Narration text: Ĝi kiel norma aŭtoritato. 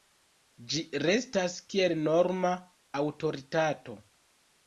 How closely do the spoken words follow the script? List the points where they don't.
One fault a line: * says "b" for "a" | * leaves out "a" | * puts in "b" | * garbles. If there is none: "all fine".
* puts in "restas"